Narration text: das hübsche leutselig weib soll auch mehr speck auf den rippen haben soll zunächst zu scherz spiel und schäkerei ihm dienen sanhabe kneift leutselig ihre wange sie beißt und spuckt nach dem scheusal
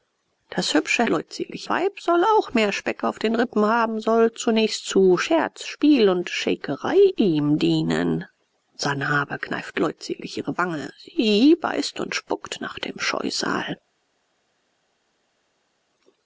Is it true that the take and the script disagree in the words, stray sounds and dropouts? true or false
false